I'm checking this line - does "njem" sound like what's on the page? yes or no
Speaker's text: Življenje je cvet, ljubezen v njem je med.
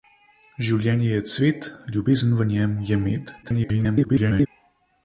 yes